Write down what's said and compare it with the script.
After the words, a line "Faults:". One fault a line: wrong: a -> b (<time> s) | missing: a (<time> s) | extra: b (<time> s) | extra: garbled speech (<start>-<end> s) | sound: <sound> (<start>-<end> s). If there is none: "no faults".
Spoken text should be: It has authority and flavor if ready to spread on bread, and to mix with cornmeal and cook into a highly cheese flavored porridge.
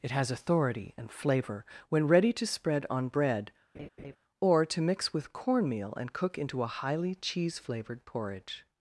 It has authority and flavor when ready to spread on bread, or to mix with cornmeal and cook into a highly cheese flavored porridge.
Faults:
wrong: if -> when (1.9 s)
sound: laugh (3.7-4.2 s)
wrong: and -> or (4.4 s)